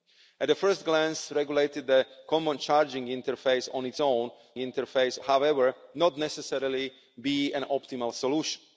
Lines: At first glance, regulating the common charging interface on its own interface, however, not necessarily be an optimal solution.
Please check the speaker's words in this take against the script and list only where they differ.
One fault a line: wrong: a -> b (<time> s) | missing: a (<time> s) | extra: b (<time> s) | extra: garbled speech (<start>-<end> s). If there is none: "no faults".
no faults